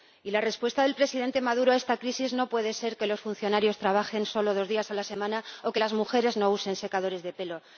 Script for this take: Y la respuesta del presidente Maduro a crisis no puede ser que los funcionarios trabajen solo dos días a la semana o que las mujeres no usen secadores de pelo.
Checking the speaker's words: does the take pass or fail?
fail